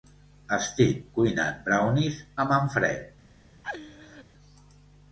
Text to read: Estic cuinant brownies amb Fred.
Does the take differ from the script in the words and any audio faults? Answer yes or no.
yes